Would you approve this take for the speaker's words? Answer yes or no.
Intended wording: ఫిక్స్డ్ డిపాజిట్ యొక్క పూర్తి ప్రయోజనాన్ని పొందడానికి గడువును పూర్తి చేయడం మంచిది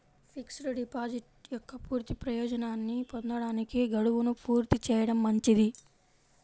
yes